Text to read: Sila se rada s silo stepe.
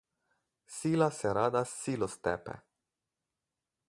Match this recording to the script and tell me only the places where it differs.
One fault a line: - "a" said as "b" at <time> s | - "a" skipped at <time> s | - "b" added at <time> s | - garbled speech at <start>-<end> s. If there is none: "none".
none